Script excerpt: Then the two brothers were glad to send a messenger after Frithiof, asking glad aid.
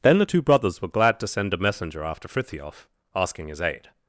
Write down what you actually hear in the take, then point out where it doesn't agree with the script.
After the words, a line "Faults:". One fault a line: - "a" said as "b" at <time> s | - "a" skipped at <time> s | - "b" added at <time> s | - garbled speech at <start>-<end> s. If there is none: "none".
Then the two brothers were glad to send a messenger after Frithiof, asking his aid.
Faults:
- "glad" said as "his" at 3.5 s